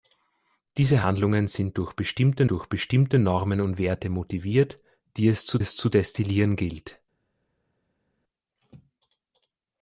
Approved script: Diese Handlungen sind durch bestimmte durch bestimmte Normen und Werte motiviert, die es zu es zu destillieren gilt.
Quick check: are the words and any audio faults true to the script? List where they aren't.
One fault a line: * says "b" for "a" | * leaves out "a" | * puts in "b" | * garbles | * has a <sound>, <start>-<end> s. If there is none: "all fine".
all fine